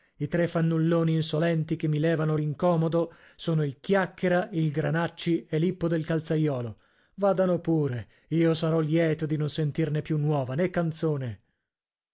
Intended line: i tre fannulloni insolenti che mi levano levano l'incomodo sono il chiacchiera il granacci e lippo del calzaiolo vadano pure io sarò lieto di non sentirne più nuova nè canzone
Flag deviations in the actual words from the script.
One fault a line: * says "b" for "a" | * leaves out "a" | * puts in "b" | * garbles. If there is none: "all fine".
* leaves out "levano"